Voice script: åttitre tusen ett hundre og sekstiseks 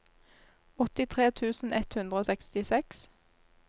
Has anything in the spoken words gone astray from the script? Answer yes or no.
no